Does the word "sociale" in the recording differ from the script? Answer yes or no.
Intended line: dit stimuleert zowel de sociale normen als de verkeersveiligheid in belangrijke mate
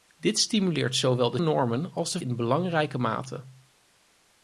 yes